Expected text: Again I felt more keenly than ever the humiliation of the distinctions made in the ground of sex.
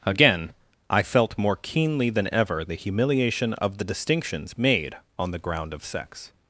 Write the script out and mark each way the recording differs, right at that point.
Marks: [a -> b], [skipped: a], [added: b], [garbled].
Again I felt more keenly than ever the humiliation of the distinctions made [in -> on] the ground of sex.